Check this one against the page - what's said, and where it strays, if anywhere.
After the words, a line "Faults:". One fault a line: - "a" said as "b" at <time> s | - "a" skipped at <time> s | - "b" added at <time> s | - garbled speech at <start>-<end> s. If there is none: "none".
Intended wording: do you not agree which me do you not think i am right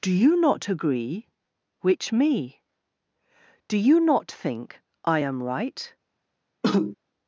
do you not agree which me do you not think i am right
Faults:
none